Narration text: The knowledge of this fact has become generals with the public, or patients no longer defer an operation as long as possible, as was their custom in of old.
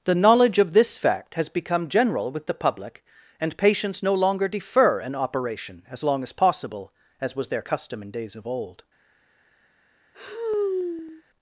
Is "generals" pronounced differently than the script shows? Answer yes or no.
yes